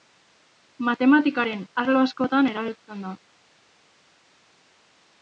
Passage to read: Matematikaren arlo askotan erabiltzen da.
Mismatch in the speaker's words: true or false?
false